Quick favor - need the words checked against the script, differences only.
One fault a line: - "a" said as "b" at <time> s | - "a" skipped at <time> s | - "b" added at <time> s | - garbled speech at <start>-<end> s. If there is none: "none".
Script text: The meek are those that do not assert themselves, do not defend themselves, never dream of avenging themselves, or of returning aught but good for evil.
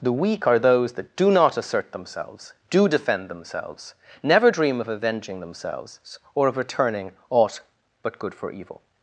- "meek" said as "weak" at 0.1 s
- "not" skipped at 2.9 s